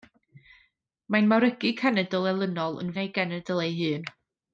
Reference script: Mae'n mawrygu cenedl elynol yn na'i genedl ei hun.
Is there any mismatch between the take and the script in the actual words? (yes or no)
no